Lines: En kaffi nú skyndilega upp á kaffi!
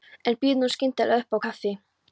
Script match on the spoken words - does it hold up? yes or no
no